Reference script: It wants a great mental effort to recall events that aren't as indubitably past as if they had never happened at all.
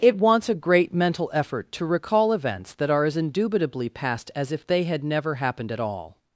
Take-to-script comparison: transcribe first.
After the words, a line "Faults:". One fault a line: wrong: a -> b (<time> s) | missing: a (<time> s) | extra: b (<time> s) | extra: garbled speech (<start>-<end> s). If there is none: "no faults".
It wants a great mental effort to recall events that are as indubitably past as if they had never happened at all.
Faults:
wrong: aren't -> are (2.9 s)